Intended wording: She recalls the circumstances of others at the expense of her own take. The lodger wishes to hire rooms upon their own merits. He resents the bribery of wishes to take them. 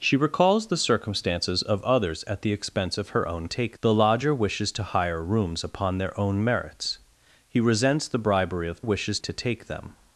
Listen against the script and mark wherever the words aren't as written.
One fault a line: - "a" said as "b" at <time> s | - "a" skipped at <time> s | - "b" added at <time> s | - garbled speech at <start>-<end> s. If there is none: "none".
none